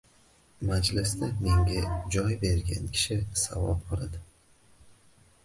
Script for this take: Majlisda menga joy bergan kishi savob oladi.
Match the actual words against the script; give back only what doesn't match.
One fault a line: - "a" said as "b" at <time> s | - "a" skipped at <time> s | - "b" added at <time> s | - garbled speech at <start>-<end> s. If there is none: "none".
none